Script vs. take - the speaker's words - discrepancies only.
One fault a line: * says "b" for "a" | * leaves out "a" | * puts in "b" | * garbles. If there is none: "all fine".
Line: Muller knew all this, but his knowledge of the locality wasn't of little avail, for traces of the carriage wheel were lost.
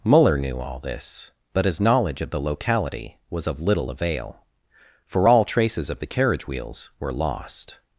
* says "was" for "wasn't"
* puts in "all"
* says "wheels" for "wheel"